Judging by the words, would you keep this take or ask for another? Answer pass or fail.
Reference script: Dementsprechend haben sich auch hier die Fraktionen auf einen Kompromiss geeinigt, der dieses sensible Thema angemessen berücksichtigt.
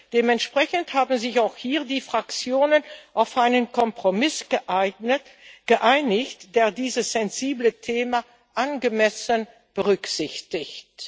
pass